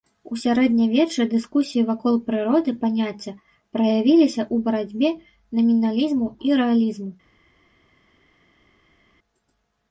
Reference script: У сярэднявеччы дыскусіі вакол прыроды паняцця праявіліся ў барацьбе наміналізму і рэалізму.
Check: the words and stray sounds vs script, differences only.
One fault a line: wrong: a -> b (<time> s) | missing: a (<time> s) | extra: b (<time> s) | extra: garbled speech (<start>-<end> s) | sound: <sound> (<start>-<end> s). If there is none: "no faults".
no faults